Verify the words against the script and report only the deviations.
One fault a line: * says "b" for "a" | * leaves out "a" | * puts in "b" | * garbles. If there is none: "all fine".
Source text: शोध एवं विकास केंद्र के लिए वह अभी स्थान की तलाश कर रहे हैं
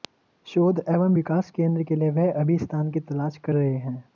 all fine